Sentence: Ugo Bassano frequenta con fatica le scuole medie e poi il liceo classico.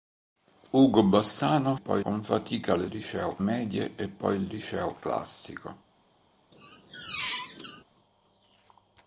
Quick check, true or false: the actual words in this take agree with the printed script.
false